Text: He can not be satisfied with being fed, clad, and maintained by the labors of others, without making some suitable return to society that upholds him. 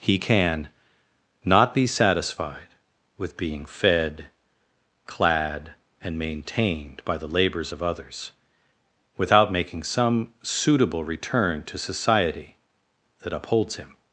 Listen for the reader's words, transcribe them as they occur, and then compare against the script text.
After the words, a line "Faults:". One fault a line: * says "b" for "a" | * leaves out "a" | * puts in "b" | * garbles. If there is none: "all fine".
He can not be satisfied with being fed, clad, and maintained by the labors of others, without making some suitable return to society that upholds him.
Faults:
all fine